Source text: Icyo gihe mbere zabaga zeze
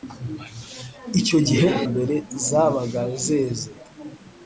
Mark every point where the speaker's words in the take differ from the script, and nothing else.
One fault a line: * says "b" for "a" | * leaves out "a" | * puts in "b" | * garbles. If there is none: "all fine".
all fine